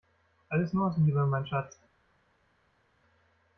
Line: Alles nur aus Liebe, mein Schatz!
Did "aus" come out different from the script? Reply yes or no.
no